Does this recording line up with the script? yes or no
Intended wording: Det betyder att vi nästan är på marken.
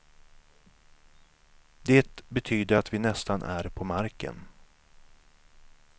yes